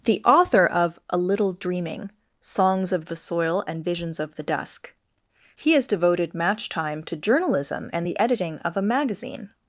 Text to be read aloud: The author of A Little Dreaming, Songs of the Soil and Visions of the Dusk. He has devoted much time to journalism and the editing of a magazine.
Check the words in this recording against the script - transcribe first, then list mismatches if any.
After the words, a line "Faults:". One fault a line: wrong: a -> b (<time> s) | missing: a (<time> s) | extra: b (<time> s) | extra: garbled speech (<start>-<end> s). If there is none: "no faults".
The author of A Little Dreaming, Songs of the Soil and Visions of the Dusk. He has devoted match time to journalism and the editing of a magazine.
Faults:
wrong: much -> match (6.3 s)